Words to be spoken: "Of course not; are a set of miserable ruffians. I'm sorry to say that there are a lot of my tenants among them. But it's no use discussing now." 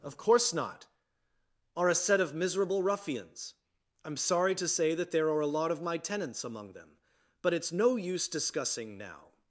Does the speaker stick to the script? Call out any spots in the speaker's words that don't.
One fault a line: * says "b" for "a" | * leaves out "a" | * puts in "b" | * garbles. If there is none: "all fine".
all fine